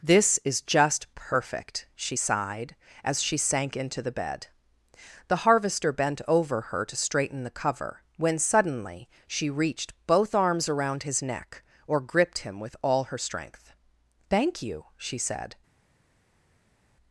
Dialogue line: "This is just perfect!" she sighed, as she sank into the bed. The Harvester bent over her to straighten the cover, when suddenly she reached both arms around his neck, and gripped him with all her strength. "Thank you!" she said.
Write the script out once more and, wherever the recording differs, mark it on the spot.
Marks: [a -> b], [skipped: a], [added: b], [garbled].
"This is just perfect!" she sighed, as she sank into the bed. The Harvester bent over her to straighten the cover, when suddenly she reached both arms around his neck, [and -> or] gripped him with all her strength. "Thank you!" she said.